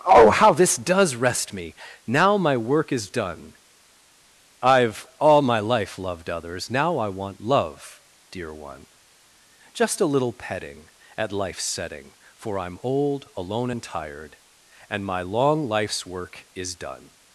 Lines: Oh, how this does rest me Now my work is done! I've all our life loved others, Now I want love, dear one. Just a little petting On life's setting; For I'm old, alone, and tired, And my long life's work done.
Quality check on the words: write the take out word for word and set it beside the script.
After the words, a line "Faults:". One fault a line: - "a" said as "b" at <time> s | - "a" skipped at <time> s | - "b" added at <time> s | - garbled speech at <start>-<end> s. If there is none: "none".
Oh, how this does rest me Now my work is done! I've all my life loved others, Now I want love, dear one. Just a little petting At life's setting; For I'm old, alone, and tired, And my long life's work is done.
Faults:
- "our" said as "my" at 5.4 s
- "On" said as "At" at 11.2 s
- "is" added at 16.5 s